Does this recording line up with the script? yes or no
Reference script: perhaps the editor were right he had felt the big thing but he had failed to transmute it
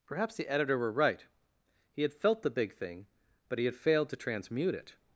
yes